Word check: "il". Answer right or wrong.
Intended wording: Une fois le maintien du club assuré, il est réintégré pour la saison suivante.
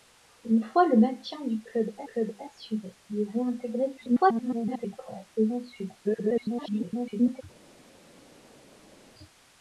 right